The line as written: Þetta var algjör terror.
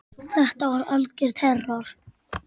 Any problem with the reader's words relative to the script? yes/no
no